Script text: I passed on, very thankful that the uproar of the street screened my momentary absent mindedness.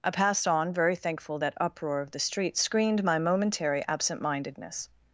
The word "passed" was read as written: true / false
true